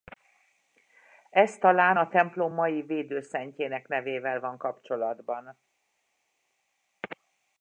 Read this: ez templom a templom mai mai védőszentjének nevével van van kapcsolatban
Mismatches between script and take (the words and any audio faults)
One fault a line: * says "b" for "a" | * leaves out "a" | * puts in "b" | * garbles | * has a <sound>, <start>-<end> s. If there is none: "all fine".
* says "talán" for "templom"
* leaves out "mai"
* leaves out "van"